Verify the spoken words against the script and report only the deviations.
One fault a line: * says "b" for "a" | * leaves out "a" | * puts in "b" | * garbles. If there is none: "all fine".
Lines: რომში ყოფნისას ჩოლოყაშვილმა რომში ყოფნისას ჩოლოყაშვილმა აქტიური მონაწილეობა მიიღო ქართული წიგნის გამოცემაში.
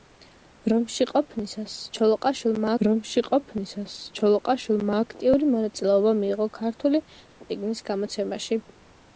all fine